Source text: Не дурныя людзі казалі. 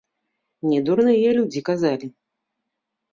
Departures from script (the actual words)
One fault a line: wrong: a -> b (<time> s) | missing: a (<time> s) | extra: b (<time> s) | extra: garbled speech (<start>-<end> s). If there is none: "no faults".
no faults